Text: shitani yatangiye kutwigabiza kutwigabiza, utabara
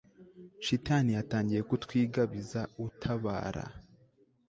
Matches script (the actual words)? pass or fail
fail